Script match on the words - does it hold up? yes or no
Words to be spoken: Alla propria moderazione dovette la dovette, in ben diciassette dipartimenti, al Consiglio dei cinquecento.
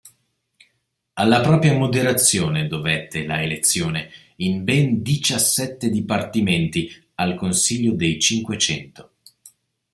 no